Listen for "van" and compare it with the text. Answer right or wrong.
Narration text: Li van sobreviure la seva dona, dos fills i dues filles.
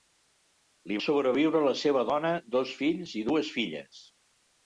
wrong